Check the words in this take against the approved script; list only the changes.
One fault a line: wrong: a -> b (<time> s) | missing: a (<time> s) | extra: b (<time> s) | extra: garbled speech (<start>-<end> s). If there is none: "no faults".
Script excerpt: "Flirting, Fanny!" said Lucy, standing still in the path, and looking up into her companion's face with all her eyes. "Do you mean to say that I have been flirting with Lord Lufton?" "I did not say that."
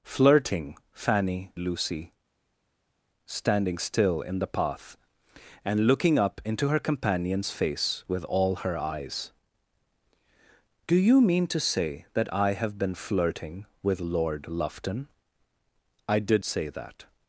missing: said (1.5 s)
missing: not (16.4 s)